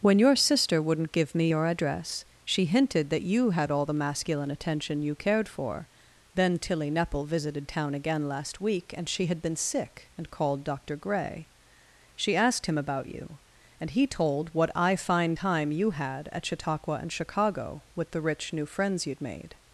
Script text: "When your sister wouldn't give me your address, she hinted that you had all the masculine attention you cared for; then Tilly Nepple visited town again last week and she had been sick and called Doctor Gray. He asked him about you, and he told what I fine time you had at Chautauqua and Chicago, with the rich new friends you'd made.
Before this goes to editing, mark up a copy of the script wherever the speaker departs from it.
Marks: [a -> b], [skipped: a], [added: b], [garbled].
"When your sister wouldn't give me your address, she hinted that you had all the masculine attention you cared for; then Tilly Nepple visited town again last week and she had been sick and called Doctor Gray. [He -> She] asked him about you, and he told what I fine time you had at Chautauqua and Chicago, with the rich new friends you'd made.